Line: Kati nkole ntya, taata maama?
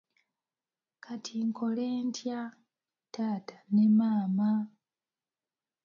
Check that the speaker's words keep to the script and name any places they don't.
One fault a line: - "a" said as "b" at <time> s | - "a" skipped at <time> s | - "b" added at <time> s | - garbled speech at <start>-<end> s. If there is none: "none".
- "ne" added at 3.7 s